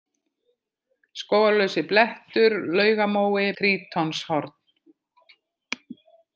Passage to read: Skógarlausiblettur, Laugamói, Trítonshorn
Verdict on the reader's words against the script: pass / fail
pass